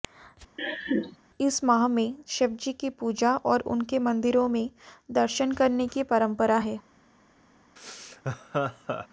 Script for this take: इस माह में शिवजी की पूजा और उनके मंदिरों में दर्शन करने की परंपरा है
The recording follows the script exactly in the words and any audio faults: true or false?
false